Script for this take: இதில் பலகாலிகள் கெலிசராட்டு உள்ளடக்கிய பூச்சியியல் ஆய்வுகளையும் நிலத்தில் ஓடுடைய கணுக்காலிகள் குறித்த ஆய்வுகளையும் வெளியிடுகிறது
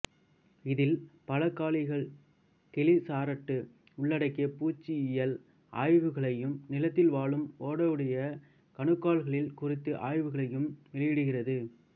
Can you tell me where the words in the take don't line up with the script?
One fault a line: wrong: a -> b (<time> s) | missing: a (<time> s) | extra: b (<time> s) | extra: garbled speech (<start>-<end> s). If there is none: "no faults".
extra: வாழும் (7.1 s)